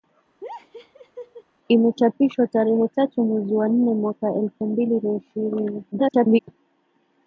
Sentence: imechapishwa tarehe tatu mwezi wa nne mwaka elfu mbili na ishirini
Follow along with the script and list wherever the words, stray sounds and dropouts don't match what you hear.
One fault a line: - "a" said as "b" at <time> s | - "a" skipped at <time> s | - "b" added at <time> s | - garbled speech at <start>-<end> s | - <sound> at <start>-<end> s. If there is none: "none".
- laugh at 0.4-1.4 s
- garbled speech at 5.9-6.4 s